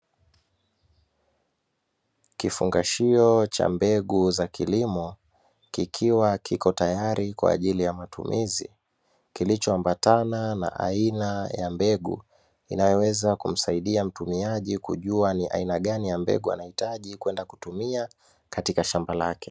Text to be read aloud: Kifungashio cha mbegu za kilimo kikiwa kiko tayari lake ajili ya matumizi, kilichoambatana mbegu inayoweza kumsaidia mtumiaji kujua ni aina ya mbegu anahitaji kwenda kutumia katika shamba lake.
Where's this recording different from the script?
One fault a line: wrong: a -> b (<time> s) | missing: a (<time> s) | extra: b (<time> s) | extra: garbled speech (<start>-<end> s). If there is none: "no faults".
wrong: lake -> kwa (7.3 s)
extra: na aina ya (10.5 s)
extra: gani (15.8 s)